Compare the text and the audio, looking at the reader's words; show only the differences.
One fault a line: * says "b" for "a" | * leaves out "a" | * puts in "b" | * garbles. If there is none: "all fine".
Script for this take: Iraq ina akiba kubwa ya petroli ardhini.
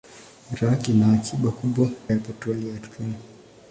all fine